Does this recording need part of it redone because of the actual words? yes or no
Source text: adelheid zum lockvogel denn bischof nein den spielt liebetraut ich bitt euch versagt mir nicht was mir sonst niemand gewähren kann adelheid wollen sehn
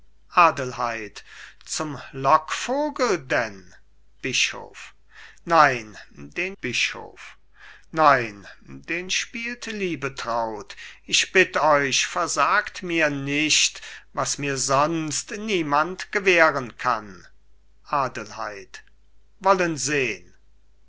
yes